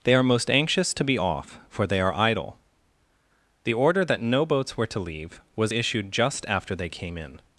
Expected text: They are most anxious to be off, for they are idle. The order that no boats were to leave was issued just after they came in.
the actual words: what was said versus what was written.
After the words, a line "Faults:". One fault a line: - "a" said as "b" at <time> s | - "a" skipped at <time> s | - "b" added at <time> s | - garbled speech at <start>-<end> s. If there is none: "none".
They are most anxious to be off, for they are idle. The order that no boats were to leave was issued just after they came in.
Faults:
none